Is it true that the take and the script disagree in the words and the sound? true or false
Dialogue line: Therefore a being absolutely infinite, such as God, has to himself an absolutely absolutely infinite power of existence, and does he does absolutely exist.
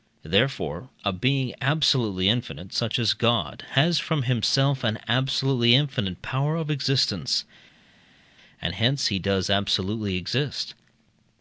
true